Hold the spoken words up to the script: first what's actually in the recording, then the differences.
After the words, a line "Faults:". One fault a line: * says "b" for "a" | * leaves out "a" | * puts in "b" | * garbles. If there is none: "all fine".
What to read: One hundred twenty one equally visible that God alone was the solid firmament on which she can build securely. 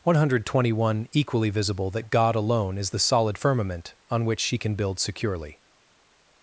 One hundred twenty one equally visible that God alone is the solid firmament on which she can build securely.
Faults:
* says "is" for "was"